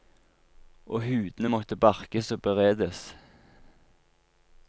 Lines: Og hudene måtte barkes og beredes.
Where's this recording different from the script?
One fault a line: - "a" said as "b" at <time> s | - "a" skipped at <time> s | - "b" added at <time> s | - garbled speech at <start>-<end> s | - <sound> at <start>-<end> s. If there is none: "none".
none